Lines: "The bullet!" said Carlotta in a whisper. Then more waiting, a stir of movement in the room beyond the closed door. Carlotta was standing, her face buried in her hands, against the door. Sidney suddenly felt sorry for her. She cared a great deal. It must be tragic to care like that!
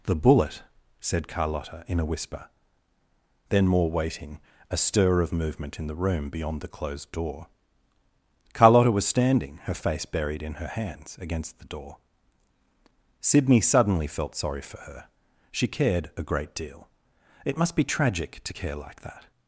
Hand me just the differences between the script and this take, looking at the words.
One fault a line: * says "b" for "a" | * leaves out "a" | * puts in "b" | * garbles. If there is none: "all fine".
all fine